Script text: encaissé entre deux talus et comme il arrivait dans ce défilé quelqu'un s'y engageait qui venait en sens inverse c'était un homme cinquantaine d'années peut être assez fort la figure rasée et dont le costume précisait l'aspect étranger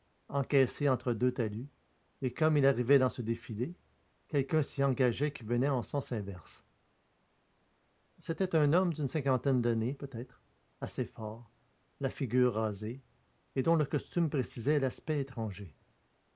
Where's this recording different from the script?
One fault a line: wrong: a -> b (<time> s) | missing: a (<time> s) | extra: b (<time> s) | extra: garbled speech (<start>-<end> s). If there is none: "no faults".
extra: d'une (8.9 s)